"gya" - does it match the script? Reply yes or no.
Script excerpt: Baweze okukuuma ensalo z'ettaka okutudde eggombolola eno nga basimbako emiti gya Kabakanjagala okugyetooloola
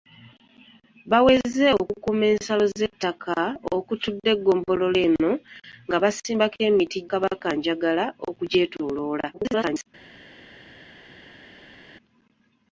no